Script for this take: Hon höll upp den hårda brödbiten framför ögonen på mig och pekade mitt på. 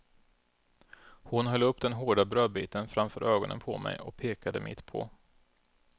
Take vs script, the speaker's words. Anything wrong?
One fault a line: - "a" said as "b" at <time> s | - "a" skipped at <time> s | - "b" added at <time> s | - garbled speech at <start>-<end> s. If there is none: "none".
none